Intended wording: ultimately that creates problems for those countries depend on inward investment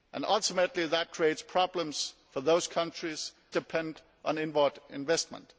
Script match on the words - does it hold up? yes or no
yes